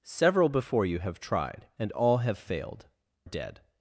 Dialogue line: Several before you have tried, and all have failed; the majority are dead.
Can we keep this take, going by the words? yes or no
no